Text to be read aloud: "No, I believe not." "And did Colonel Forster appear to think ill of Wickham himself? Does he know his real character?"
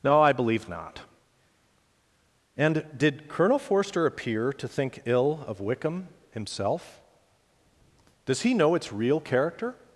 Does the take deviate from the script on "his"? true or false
true